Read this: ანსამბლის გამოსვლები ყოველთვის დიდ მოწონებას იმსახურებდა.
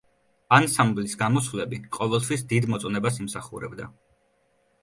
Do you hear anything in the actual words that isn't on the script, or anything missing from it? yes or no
no